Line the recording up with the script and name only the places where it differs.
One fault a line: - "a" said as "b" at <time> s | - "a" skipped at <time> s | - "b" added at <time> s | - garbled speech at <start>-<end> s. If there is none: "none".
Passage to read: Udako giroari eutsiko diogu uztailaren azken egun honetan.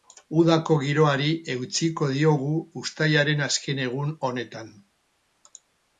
none